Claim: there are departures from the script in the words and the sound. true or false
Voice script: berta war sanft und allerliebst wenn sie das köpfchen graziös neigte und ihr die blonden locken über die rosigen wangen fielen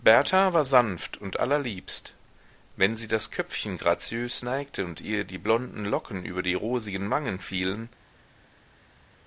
false